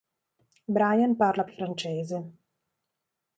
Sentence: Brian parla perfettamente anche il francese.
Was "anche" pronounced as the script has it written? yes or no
no